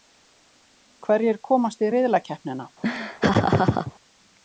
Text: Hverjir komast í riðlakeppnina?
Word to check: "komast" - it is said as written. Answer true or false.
true